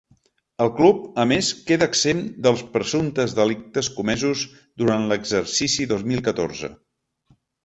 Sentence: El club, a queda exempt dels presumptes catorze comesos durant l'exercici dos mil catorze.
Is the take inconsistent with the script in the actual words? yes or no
yes